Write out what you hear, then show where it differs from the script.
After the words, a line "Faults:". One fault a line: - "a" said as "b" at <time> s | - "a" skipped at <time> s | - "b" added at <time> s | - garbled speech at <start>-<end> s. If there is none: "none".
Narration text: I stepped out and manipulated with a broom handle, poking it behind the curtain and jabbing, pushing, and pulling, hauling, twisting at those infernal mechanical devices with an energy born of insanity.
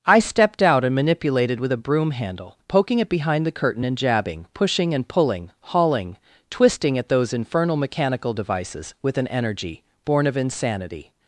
I stepped out and manipulated with a broom handle, poking it behind the curtain and jabbing, pushing, and pulling, hauling, twisting at those infernal mechanical devices with an energy born of insanity.
Faults:
none